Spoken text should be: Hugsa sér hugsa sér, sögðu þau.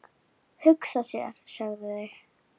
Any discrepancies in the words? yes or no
yes